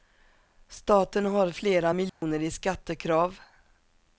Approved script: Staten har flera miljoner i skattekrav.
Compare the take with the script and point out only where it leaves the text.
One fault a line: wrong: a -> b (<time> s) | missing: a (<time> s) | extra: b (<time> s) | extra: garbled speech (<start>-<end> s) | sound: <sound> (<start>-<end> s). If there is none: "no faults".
sound: dropout (2.1-2.2 s)